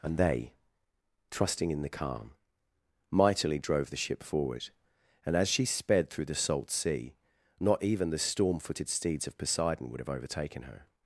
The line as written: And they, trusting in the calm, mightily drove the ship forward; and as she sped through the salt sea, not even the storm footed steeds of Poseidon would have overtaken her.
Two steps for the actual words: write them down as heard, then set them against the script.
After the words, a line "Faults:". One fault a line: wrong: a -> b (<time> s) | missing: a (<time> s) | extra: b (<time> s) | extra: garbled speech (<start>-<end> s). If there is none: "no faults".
And they, trusting in the calm, mightily drove the ship forward; and as she sped through the salt sea, not even the storm footed steeds of Poseidon would have overtaken her.
Faults:
no faults